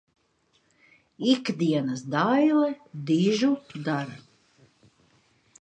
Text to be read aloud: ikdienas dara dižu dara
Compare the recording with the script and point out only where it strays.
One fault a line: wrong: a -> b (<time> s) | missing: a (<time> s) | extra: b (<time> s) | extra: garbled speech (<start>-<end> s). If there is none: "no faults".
wrong: dara -> daile (2.1 s)